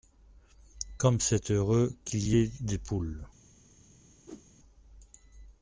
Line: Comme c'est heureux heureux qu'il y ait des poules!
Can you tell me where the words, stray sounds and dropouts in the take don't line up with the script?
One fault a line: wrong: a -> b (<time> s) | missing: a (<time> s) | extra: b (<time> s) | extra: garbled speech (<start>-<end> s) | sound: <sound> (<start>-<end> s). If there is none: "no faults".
missing: heureux (1.9 s)
sound: whoosh (4.3-4.5 s)